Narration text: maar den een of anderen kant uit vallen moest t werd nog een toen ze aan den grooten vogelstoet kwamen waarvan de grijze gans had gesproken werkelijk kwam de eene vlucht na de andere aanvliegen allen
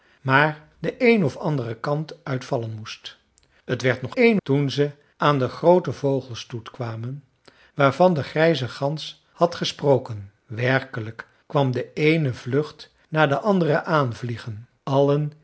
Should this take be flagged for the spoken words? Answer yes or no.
no